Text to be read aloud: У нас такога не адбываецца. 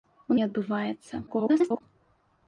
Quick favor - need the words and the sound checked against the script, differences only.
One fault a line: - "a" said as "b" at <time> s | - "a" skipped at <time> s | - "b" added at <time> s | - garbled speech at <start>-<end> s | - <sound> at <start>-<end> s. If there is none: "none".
- "нас такога" skipped at 0.3 s
- garbled speech at 1.3-1.8 s